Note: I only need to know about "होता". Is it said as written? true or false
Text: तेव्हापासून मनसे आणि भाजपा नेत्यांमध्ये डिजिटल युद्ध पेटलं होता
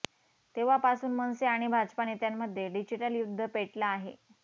false